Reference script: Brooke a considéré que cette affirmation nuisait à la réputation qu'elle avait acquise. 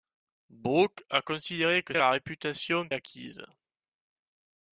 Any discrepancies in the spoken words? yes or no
yes